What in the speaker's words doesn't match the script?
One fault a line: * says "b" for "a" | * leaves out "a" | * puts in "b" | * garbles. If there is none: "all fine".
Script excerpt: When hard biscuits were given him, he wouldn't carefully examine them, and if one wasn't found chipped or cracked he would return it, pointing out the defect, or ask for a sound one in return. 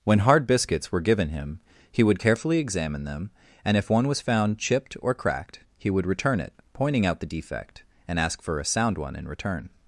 * says "would" for "wouldn't"
* says "was" for "wasn't"
* says "and" for "or"